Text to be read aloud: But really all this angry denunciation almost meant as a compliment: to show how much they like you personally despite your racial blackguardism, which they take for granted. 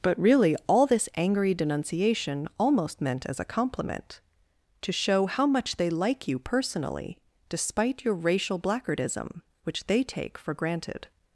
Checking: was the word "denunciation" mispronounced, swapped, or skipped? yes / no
no